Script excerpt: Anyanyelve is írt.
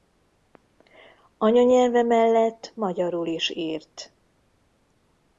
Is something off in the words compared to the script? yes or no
yes